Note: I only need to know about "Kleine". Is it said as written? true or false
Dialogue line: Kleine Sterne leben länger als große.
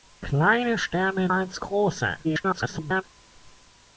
true